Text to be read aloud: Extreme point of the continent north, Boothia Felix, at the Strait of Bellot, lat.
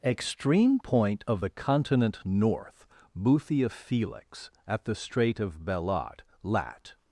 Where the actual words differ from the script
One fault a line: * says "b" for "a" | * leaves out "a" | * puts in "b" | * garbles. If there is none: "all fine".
all fine